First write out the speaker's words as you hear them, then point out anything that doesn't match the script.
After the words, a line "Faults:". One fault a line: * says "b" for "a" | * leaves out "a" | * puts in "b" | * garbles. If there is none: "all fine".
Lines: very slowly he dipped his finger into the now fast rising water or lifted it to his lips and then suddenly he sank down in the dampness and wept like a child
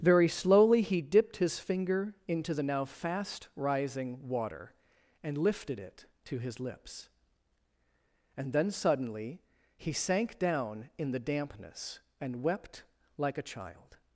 very slowly he dipped his finger into the now fast rising water and lifted it to his lips and then suddenly he sank down in the dampness and wept like a child
Faults:
* says "and" for "or"